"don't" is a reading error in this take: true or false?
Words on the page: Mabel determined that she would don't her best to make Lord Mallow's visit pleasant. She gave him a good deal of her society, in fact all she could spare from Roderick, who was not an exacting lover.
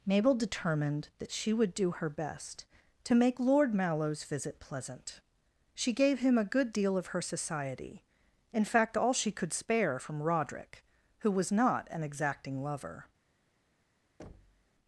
true